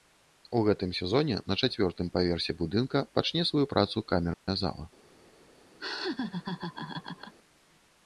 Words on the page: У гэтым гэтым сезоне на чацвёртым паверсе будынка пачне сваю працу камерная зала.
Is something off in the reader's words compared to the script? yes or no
yes